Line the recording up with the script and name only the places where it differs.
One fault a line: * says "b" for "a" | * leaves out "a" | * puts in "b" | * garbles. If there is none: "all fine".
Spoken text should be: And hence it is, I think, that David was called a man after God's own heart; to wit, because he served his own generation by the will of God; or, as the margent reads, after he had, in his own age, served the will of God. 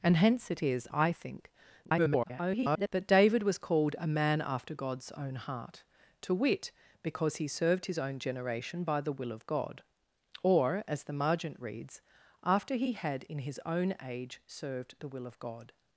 * garbles